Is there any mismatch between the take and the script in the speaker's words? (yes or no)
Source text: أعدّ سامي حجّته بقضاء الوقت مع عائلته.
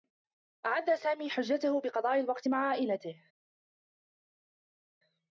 no